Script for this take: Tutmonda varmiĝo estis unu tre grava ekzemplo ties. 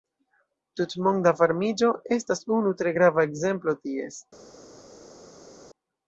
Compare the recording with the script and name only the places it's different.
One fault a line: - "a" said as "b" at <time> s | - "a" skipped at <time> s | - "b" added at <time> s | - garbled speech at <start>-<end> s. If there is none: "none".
- "estis" said as "estas" at 2.2 s